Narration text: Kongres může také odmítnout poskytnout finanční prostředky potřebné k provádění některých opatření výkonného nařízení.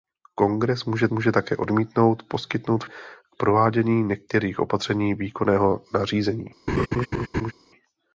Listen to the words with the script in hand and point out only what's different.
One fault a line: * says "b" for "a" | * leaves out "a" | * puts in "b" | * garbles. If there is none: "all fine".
* puts in "může"
* leaves out "finanční prostředky potřebné"